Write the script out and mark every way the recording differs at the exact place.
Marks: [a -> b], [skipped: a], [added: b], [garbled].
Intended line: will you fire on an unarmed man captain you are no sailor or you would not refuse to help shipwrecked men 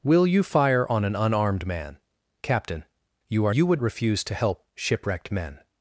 will you fire on an unarmed man captain you are [skipped: no sailor or] you would [skipped: not] refuse to help shipwrecked men